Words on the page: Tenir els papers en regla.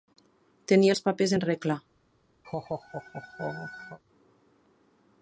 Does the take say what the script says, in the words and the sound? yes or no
no